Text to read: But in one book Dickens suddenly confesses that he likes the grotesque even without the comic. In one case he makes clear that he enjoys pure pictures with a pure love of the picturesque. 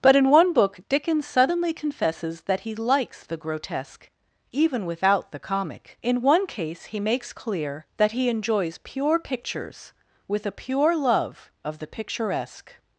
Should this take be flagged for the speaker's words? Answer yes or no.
no